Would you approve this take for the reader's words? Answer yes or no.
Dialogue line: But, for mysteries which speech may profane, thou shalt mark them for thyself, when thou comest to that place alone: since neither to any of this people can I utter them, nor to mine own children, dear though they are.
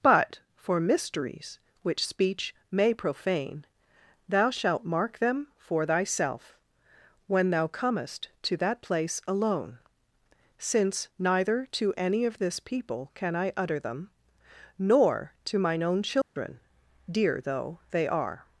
yes